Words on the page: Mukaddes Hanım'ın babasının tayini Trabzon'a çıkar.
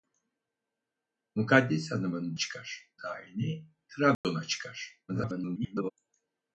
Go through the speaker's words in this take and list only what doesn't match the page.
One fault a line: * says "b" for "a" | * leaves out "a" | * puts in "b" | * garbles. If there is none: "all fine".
* says "çıkar" for "babasının"
* garbles